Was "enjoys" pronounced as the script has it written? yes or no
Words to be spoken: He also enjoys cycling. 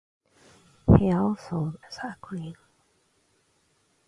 no